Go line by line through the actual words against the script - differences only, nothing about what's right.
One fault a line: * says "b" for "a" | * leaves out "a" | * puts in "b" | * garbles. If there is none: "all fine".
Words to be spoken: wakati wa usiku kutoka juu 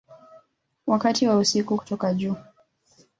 all fine